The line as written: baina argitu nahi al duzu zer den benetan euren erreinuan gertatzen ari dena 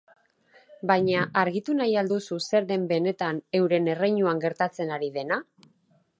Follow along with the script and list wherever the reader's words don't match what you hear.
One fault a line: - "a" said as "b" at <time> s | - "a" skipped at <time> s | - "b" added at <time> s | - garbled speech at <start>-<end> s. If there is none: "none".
none